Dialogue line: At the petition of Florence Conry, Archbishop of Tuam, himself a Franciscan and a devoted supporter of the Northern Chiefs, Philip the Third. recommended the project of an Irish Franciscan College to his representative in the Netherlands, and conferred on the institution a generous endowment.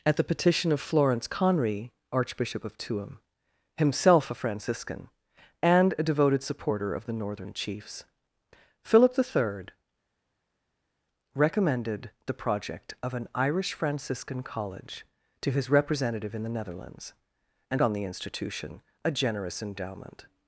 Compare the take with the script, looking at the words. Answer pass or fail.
fail